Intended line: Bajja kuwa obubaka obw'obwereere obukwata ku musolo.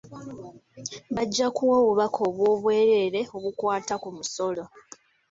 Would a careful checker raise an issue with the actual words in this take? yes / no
no